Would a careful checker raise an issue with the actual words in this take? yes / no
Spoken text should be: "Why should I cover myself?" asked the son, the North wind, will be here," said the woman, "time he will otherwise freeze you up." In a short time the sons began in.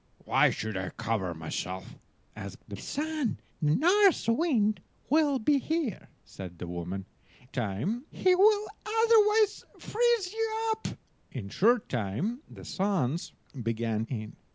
no